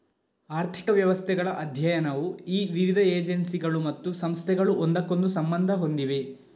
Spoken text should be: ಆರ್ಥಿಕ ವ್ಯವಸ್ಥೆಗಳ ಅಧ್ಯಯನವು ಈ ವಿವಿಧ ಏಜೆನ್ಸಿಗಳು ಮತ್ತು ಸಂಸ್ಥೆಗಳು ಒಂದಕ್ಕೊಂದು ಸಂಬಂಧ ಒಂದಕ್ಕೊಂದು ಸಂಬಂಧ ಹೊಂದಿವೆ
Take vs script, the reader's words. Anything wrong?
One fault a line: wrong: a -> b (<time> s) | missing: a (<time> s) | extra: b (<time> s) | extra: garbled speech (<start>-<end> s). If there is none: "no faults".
missing: ಒಂದಕ್ಕೊಂದು ಸಂಬಂಧ (5.7 s)